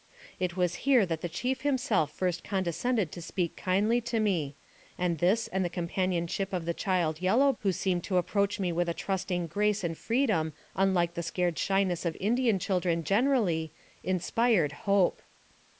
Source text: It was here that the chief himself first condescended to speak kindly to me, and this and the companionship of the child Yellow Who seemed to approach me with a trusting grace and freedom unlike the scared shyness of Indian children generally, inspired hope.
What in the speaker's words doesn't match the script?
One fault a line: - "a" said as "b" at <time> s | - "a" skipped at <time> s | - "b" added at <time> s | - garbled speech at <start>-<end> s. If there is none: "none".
none